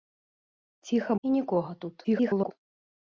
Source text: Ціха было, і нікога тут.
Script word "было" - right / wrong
wrong